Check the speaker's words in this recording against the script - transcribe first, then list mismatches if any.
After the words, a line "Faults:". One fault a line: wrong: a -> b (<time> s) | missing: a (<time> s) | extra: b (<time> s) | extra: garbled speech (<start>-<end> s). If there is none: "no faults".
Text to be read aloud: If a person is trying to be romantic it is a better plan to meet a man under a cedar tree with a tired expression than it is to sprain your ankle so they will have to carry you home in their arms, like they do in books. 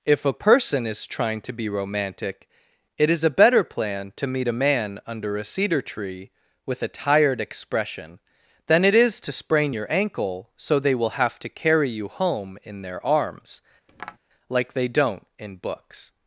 If a person is trying to be romantic it is a better plan to meet a man under a cedar tree with a tired expression than it is to sprain your ankle so they will have to carry you home in their arms, like they don't in books.
Faults:
wrong: do -> don't (14.9 s)